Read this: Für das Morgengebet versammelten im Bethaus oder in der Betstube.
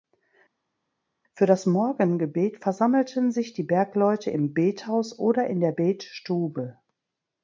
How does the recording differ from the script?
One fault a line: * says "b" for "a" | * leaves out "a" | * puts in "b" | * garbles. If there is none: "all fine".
* puts in "sich die Bergleute"